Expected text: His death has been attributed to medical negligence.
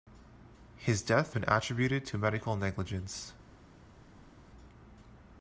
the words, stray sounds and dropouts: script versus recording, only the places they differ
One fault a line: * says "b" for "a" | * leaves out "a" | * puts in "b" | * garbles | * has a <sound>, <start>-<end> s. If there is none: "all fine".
* leaves out "has"